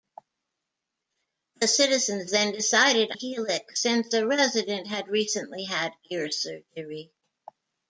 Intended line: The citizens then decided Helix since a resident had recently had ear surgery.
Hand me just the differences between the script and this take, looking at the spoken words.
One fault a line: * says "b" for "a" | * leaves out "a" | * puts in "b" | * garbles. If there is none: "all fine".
all fine